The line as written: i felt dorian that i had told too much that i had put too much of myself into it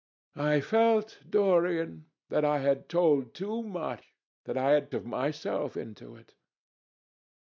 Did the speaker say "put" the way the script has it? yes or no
no